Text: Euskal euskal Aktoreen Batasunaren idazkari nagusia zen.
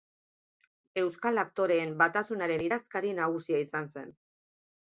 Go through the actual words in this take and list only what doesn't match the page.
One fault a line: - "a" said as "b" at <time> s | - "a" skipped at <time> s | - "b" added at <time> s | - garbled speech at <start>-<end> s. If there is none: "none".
- "euskal" skipped at 1.4 s
- "izan" added at 3.7 s